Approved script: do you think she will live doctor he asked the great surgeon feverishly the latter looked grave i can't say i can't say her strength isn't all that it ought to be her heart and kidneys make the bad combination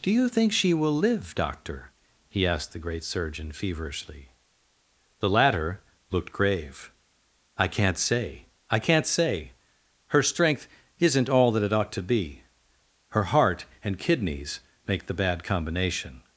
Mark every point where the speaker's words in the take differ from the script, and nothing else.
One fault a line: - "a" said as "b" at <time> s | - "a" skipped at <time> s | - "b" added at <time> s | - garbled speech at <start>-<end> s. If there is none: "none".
none